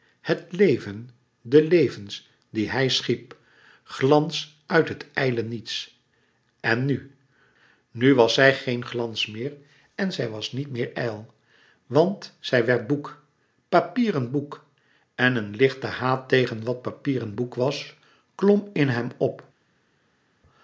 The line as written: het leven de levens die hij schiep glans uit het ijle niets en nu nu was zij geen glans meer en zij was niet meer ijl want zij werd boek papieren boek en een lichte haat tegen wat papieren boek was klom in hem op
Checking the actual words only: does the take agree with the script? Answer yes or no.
yes